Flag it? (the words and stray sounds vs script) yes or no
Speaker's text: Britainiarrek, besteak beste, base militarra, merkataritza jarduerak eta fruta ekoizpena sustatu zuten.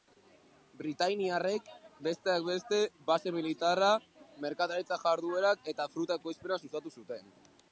no